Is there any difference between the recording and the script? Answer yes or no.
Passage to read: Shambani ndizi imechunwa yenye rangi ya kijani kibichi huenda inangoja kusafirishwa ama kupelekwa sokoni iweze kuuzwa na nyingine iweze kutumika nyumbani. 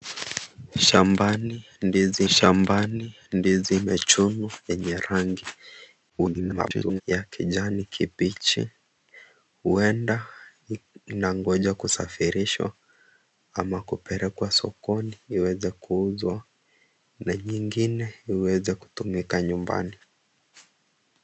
yes